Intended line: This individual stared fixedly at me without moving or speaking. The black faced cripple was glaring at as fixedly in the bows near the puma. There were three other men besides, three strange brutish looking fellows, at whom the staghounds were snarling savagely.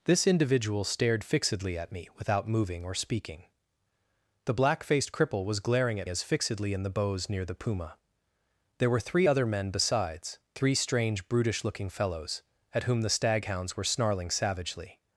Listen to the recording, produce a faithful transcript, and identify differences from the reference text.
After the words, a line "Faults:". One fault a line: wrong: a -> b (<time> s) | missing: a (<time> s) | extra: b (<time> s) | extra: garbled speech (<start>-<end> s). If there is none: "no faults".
This individual stared fixedly at me without moving or speaking. The black faced cripple was glaring at as fixedly in the bows near the puma. There were three other men besides, three strange brutish looking fellows, at whom the staghounds were snarling savagely.
Faults:
no faults